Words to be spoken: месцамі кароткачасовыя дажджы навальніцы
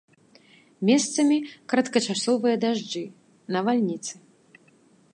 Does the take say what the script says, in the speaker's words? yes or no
yes